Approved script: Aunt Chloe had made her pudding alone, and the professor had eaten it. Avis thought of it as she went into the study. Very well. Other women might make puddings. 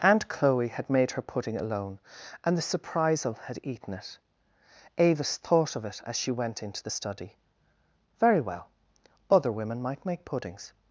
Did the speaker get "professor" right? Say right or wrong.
wrong